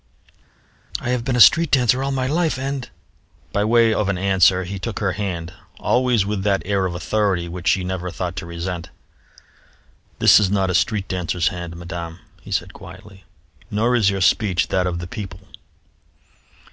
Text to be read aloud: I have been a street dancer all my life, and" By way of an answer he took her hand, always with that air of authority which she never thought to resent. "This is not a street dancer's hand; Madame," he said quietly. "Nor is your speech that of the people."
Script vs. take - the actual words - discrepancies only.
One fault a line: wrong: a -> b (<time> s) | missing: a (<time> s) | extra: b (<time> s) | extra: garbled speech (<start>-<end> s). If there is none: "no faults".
no faults